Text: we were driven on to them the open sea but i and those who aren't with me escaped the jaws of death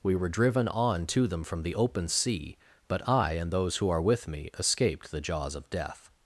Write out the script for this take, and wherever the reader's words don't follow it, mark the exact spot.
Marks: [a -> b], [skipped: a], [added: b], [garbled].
we were driven on to them [added: from] the open sea but i and those who [aren't -> are] with me escaped the jaws of death